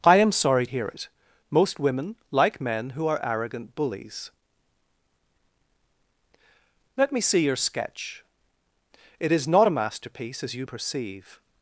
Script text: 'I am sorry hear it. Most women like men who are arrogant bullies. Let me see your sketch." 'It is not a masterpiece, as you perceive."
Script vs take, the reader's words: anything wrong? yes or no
no